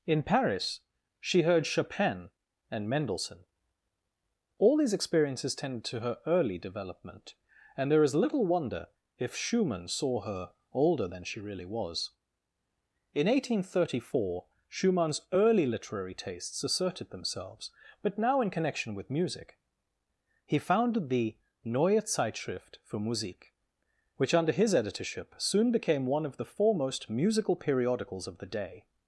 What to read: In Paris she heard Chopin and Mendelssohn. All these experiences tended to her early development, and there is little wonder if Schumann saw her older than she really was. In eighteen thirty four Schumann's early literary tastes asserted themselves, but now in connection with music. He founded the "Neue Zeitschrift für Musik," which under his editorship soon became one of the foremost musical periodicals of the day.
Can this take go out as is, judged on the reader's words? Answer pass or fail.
pass